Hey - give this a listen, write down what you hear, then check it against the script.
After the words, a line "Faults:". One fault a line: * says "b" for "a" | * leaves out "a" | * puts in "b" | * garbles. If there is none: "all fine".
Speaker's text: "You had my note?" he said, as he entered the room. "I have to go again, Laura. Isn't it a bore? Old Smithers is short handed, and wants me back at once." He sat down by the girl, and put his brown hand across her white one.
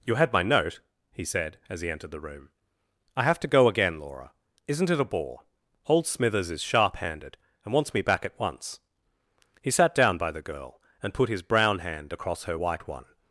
"You had my note?" he said, as he entered the room. "I have to go again, Laura. Isn't it a bore? Old Smithers is sharp handed, and wants me back at once." He sat down by the girl, and put his brown hand across her white one.
Faults:
* says "sharp" for "short"